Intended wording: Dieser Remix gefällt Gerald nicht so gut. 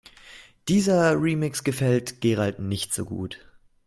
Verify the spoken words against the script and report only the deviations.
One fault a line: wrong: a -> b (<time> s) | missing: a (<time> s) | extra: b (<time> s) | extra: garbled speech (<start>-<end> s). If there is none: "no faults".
no faults